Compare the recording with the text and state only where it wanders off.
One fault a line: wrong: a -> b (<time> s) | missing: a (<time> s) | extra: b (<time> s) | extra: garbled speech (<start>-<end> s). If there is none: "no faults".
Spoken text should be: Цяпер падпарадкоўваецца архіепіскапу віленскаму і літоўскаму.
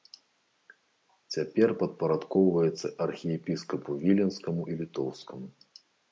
no faults